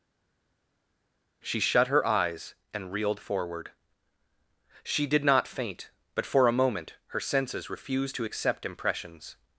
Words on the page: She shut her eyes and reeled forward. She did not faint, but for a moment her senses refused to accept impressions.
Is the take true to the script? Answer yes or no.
yes